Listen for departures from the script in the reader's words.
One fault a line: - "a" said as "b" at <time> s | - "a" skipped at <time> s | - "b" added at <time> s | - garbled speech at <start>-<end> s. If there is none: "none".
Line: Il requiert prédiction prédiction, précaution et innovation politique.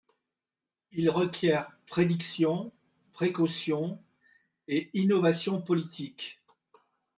- "prédiction" skipped at 2.7 s